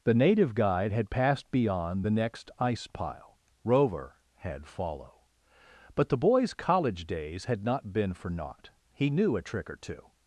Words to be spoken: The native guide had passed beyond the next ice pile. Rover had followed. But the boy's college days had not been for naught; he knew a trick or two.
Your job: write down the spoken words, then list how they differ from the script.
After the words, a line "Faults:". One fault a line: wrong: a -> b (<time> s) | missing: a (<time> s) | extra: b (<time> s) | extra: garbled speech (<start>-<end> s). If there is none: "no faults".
The native guide had passed beyond the next ice pile. Rover had follow. But the boy's college days had not been for naught; he knew a trick or two.
Faults:
wrong: followed -> follow (4.7 s)